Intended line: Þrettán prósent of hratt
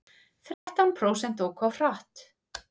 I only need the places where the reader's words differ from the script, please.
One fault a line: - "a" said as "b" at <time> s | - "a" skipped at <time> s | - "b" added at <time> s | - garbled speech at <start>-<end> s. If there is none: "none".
- "óku" added at 1.5 s